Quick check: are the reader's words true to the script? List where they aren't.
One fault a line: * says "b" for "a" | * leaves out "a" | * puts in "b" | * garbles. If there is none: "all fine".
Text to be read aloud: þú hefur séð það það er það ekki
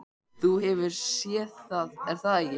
* leaves out "það"